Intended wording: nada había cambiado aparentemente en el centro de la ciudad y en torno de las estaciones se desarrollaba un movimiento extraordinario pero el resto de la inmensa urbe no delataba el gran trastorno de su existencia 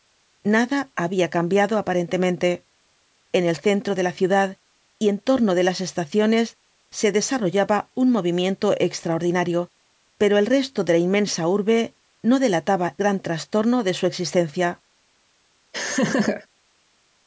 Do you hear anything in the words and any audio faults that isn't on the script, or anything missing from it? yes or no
yes